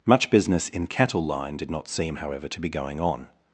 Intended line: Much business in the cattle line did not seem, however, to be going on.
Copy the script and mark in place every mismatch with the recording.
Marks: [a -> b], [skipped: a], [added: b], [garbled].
Much business in [skipped: the] cattle line did not seem, however, to be going on.